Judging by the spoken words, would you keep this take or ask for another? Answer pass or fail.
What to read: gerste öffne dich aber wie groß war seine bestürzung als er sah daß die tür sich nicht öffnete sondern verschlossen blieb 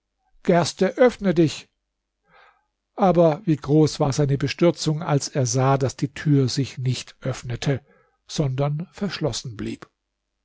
pass